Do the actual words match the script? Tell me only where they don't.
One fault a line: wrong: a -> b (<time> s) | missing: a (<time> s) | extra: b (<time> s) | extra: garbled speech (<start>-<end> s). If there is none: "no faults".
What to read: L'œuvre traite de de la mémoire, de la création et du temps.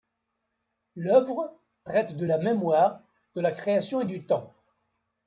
missing: de (2.2 s)